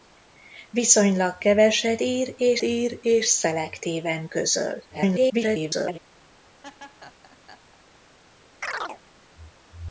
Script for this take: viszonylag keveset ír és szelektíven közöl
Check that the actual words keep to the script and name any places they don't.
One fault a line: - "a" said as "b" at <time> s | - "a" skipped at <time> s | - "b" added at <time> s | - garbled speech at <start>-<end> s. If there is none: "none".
- "ír és" added at 2.6 s
- garbled speech at 4.9-6.0 s